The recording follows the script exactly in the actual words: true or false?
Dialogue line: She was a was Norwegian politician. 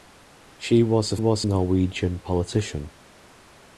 true